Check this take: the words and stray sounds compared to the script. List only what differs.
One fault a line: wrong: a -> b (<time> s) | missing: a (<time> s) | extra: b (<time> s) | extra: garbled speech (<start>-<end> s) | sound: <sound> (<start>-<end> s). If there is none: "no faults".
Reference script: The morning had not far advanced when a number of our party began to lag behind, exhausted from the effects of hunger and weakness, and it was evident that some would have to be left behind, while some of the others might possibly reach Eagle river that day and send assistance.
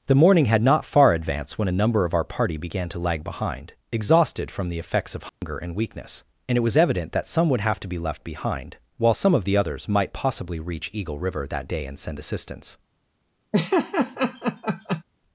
sound: dropout (5.3-5.4 s)
sound: laugh (13.5-15.0 s)